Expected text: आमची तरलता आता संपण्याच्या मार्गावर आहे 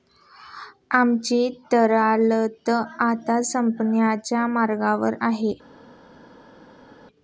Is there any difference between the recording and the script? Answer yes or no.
no